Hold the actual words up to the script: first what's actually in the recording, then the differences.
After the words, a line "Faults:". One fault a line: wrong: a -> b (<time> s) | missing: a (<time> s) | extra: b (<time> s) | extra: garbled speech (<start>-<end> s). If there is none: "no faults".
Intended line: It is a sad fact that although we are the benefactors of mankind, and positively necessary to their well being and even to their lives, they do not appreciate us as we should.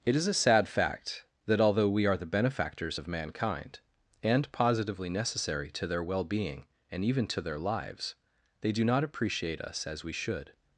It is a sad fact that although we are the benefactors of mankind, and positively necessary to their well being and even to their lives, they do not appreciate us as we should.
Faults:
no faults